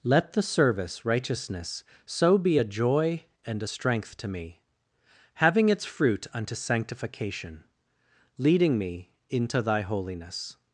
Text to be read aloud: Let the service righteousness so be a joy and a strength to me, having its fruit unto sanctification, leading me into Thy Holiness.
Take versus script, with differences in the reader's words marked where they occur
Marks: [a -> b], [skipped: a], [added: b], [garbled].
Let the service righteousness so be a joy and a strength to me, having its fruit unto sanctification, leading me into Thy Holiness.